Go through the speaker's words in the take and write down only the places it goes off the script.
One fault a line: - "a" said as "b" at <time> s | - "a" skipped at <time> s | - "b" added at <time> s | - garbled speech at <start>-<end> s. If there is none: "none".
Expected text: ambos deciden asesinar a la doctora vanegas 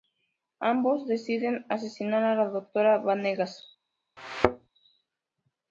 none